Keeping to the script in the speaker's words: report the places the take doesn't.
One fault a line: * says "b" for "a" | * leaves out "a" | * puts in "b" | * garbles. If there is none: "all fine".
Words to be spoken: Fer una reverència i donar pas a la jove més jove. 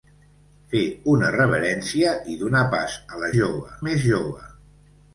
all fine